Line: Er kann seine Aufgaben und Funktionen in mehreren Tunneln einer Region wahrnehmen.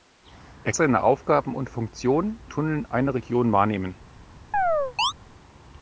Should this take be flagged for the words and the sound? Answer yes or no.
yes